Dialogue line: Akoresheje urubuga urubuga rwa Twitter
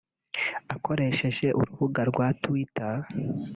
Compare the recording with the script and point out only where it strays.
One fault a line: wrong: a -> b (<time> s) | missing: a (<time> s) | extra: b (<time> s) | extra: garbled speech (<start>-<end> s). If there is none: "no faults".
missing: urubuga (2.0 s)